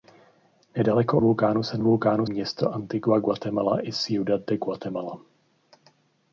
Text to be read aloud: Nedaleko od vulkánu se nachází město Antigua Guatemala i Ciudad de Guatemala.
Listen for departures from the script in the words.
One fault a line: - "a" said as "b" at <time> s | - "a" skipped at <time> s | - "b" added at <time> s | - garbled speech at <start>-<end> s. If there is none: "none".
- "od" skipped at 1.2 s
- "nachází" said as "vulkánu" at 1.8 s